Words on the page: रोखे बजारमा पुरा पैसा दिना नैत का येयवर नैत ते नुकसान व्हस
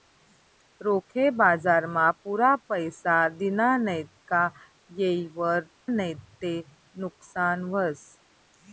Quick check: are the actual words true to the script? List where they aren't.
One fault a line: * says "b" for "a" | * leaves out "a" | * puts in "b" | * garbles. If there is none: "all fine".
all fine